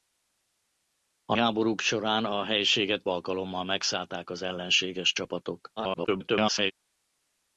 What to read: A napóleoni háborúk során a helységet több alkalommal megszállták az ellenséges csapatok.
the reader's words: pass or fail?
fail